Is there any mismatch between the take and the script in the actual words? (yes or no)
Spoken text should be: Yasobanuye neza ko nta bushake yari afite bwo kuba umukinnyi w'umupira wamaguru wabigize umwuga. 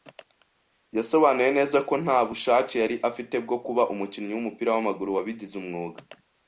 no